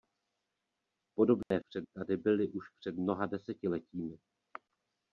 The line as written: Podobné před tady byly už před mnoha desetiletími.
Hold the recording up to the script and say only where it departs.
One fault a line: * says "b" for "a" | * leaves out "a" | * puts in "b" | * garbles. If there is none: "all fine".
all fine